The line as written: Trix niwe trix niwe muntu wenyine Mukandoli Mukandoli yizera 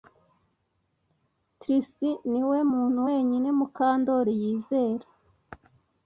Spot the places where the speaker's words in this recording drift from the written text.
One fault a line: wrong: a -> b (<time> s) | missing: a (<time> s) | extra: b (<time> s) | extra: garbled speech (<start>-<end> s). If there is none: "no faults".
missing: trix niwe (2.6 s)
missing: Mukandoli (4.3 s)